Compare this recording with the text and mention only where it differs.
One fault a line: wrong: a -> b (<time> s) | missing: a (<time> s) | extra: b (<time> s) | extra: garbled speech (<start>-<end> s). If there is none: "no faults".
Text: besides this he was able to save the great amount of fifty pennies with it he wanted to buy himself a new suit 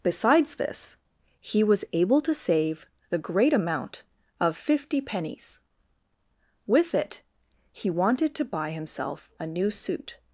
no faults